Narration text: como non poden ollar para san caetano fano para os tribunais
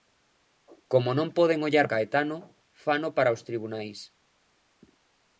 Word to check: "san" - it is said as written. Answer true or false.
false